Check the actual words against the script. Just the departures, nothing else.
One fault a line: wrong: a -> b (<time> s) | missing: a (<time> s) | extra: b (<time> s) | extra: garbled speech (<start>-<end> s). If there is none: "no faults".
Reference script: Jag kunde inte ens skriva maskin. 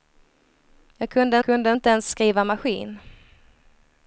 extra: kunde (1.4 s)